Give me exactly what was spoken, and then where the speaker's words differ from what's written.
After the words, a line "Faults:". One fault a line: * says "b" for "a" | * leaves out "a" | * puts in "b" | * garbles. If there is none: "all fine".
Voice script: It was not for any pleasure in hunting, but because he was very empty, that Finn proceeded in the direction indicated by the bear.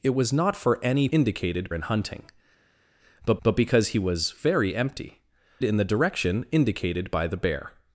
It was not for any indicated in hunting, but but because he was very empty, in the direction indicated by the bear.
Faults:
* says "indicated" for "pleasure"
* puts in "but"
* leaves out "that Finn proceeded"